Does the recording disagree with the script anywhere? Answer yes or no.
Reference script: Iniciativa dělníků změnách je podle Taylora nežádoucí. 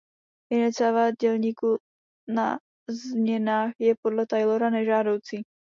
yes